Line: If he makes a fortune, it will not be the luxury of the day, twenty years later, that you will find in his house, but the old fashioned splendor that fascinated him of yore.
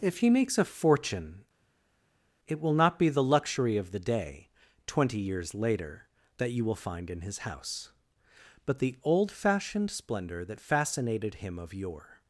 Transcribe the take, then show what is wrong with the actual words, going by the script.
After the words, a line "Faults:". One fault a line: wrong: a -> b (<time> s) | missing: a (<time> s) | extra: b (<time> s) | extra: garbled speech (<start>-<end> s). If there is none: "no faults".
If he makes a fortune, it will not be the luxury of the day, twenty years later, that you will find in his house, but the old fashioned splendor that fascinated him of yore.
Faults:
no faults